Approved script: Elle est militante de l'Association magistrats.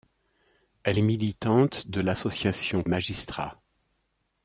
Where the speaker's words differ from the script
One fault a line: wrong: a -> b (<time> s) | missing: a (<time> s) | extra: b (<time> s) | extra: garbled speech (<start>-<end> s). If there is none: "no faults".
no faults